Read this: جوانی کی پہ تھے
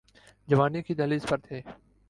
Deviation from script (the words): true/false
true